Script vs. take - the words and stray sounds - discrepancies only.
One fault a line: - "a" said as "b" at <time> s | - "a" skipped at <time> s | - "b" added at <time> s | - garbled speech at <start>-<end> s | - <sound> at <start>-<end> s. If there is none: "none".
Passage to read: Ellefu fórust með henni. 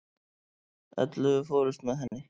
- dropout at 2.1-2.1 s